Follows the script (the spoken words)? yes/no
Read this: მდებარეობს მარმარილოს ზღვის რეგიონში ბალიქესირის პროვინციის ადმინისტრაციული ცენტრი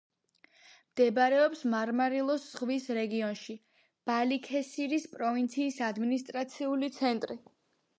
yes